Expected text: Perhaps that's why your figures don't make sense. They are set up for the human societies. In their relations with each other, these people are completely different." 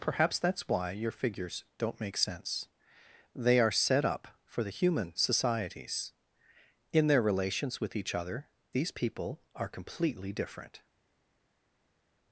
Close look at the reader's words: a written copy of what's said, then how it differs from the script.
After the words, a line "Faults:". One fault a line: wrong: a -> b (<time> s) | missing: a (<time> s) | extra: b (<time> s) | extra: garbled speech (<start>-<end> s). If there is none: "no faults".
Perhaps that's why your figures don't make sense. They are set up for the human societies. In their relations with each other, these people are completely different."
Faults:
no faults